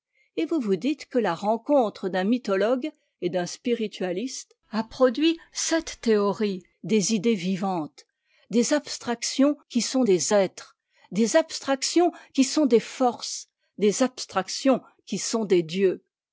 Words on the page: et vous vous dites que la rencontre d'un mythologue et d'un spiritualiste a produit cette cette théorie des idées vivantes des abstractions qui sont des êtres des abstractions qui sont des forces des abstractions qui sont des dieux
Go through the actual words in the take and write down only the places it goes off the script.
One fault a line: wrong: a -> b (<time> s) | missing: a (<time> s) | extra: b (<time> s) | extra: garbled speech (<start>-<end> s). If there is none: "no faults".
missing: cette (6.0 s)